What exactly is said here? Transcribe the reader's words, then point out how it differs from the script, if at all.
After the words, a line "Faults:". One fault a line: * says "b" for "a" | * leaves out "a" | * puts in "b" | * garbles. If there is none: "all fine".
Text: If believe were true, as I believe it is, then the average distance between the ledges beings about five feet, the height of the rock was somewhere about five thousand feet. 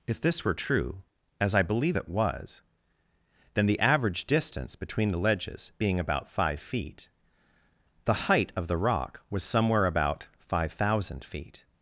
If this were true, as I believe it was, then the average distance between the ledges being about five feet, the height of the rock was somewhere about five thousand feet.
Faults:
* says "this" for "believe"
* says "was" for "is"
* says "being" for "beings"